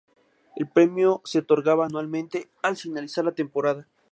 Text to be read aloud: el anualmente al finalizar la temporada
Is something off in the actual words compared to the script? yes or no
yes